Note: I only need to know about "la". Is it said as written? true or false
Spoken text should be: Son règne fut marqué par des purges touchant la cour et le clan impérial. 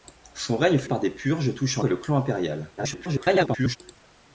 false